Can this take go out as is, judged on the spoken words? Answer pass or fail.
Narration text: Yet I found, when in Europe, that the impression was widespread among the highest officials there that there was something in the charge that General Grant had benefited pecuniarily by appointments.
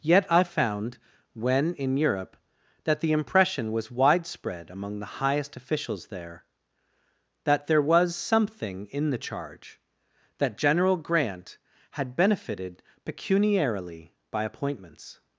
pass